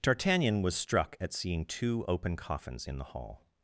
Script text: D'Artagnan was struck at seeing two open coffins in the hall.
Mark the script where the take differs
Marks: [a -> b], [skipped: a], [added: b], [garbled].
D'Artagnan was struck at seeing two open coffins in the hall.